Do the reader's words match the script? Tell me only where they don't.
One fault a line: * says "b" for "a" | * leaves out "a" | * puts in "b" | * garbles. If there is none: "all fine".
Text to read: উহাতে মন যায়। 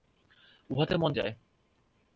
all fine